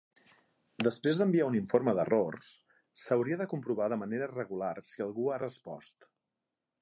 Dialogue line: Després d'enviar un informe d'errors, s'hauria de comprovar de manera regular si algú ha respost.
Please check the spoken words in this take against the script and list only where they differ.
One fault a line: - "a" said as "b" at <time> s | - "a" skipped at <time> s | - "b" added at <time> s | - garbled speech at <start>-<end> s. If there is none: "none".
none